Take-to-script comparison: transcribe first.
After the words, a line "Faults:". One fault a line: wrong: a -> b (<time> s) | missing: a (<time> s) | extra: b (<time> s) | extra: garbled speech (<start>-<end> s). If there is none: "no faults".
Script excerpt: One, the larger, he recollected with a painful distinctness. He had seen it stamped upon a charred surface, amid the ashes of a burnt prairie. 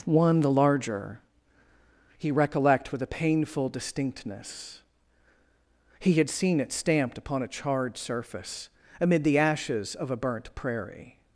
One, the larger, he recollect with a painful distinctness. He had seen it stamped upon a charred surface, amid the ashes of a burnt prairie.
Faults:
wrong: recollected -> recollect (2.3 s)